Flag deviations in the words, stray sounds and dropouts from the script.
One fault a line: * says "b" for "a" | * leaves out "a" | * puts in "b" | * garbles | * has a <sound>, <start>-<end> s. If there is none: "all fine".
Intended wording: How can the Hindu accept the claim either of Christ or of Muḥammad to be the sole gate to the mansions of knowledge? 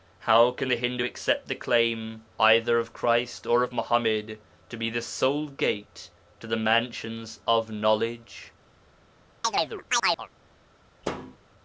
* has a chirp, 9.4-10.3 s
* has a thud, 11.0-11.4 s